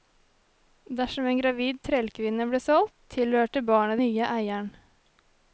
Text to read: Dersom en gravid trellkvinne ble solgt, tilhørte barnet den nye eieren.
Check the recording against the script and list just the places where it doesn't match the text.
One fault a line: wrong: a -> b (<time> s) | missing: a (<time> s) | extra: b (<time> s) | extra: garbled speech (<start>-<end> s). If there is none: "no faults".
missing: den (4.0 s)